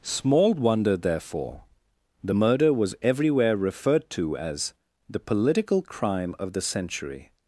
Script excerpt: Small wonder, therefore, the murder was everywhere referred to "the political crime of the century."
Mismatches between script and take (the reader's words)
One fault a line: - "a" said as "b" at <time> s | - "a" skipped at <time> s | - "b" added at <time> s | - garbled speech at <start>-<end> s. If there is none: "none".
- "as" added at 4.4 s